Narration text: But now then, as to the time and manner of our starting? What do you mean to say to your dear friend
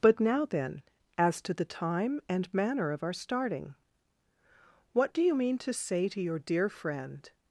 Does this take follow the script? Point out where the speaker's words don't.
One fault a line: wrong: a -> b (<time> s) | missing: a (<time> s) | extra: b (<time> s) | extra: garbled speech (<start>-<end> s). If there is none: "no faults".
no faults